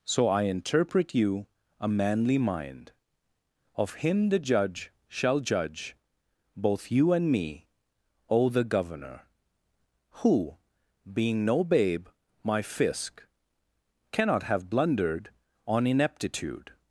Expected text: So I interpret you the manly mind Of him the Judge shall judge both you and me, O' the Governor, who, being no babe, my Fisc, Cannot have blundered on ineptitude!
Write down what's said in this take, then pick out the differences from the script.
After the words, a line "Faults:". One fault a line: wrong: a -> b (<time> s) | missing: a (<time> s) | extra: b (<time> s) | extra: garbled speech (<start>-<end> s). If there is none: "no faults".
So I interpret you a manly mind Of him the Judge shall judge both you and me, O' the Governor, who, being no babe, my Fisc, Cannot have blundered on ineptitude!
Faults:
wrong: the -> a (1.8 s)